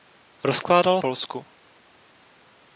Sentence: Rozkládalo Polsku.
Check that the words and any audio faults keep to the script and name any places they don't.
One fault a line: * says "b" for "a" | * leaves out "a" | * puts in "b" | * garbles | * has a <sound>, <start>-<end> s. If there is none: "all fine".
all fine